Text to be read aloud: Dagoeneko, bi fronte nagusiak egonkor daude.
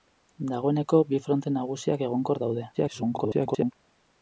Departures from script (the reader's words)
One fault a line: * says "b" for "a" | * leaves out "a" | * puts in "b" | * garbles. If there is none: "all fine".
* garbles